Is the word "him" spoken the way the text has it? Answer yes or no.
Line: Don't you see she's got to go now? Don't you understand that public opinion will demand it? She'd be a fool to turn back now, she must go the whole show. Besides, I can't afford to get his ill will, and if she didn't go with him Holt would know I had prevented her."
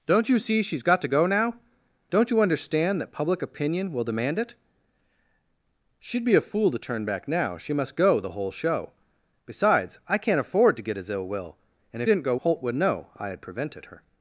no